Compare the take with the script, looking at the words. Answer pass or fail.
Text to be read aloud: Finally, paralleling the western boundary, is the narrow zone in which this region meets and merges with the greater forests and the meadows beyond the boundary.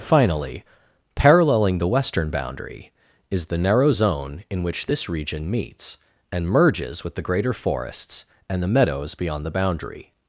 pass